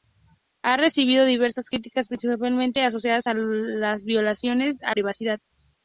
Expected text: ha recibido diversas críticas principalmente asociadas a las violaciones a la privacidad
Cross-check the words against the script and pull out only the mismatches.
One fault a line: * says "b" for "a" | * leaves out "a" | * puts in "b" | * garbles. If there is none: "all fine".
* leaves out "la"